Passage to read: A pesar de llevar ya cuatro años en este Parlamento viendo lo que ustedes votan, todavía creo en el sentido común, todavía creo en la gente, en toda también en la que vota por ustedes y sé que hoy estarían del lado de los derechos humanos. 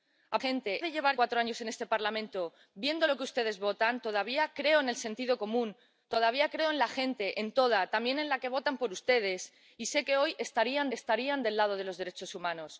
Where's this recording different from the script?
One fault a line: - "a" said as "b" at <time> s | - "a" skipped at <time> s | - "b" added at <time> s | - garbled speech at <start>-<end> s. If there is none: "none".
- "pesar" said as "gente" at 0.4 s
- "ya" skipped at 1.1 s
- "estarían" added at 11.0 s